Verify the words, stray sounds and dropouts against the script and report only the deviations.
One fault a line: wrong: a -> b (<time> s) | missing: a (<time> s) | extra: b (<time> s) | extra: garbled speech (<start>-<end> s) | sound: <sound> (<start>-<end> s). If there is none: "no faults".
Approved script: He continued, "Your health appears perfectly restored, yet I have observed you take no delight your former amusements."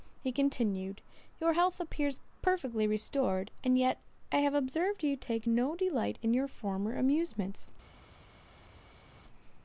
extra: and (3.6 s)
extra: in (6.2 s)